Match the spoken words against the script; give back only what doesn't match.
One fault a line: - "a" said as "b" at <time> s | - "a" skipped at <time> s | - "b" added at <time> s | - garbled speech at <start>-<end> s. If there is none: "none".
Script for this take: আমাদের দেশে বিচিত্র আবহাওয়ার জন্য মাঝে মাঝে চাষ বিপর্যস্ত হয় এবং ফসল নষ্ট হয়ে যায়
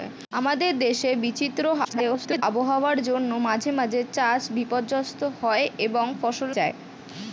- garbled speech at 1.8-2.4 s
- "নষ্ট হয়ে" skipped at 6.5 s